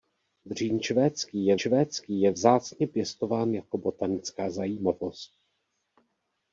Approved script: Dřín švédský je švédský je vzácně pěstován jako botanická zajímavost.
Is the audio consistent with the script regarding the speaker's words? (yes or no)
yes